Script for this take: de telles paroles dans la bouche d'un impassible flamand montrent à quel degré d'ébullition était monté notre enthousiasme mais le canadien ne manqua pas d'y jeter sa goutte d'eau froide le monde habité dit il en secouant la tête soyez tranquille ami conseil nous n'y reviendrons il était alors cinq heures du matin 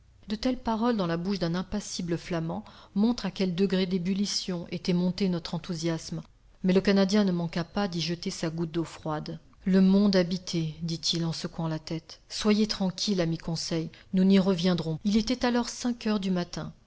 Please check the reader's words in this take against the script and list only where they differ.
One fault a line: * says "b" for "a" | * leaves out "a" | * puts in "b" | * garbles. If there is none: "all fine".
all fine